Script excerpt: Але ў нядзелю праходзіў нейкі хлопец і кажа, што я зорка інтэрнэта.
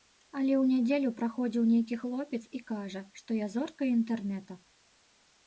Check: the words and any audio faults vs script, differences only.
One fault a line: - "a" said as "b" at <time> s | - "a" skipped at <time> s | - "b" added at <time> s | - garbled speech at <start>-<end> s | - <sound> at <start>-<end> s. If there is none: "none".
none